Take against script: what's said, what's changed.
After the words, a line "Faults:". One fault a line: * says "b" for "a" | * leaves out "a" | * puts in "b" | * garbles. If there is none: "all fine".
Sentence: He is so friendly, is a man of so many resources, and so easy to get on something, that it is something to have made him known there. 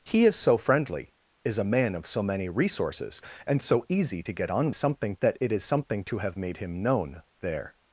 He is so friendly, is a man of so many resources, and so easy to get on something, that it is something to have made him known there.
Faults:
all fine